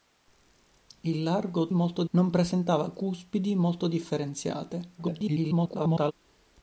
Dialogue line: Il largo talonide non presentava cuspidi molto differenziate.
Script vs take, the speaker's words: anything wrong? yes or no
yes